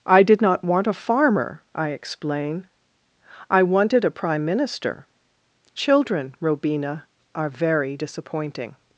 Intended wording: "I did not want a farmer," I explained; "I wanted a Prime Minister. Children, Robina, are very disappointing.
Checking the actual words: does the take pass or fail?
fail